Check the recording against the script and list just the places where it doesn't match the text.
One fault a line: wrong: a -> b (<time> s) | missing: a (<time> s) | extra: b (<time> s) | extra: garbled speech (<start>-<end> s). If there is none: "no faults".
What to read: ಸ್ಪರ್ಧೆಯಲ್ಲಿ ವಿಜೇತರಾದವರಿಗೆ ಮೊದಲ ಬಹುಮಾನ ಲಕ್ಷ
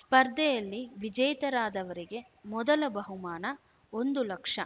extra: ಒಂದು (3.9 s)